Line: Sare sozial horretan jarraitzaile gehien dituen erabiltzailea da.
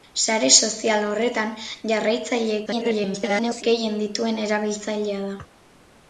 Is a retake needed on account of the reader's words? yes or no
yes